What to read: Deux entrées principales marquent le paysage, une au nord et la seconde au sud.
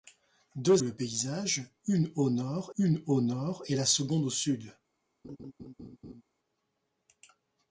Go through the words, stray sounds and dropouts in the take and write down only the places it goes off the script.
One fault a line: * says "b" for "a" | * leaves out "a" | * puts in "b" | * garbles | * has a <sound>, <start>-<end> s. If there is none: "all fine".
* says "le paysage une au nord" for "entrées principales marquent le paysage"
* has a laugh, 5.2-6.2 s